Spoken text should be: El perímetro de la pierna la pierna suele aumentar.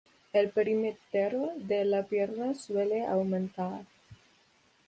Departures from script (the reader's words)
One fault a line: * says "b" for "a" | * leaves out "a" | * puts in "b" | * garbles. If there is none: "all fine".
* leaves out "la pierna"